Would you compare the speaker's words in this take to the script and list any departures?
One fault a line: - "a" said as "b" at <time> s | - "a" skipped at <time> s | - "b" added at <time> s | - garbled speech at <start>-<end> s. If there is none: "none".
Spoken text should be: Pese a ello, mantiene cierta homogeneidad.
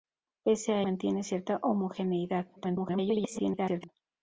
- "ello" skipped at 0.8 s
- garbled speech at 2.6-3.9 s